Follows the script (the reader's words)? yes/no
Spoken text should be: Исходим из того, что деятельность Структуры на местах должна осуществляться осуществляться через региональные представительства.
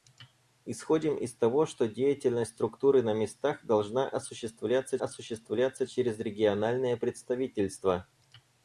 yes